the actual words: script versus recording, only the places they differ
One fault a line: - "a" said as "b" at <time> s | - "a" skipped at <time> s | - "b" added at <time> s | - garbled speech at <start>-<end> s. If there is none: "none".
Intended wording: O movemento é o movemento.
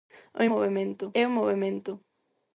none